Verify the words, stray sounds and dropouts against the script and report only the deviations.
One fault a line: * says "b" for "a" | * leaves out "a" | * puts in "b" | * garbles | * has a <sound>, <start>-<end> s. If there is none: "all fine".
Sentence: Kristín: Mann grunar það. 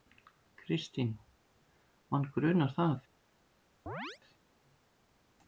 * has a chirp, 3.9-4.2 s